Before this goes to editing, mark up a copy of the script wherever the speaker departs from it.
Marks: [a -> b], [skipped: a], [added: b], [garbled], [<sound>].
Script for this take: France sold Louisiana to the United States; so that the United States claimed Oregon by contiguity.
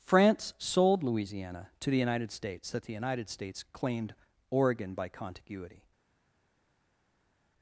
France sold Louisiana to the United States; [skipped: so] that the United States claimed Oregon by contiguity.